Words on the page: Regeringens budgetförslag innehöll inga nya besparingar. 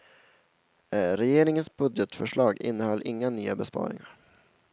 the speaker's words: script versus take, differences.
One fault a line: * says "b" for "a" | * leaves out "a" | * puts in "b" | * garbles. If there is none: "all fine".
all fine